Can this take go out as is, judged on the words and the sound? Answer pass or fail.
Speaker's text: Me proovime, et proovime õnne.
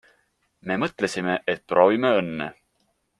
fail